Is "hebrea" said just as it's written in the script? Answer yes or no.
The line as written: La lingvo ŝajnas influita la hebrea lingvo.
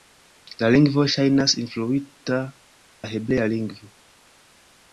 yes